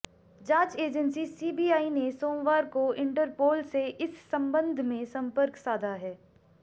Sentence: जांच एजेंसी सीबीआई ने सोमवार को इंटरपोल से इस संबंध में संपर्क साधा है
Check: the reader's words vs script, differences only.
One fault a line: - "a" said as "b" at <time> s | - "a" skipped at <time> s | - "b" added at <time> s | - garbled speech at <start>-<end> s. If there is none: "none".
none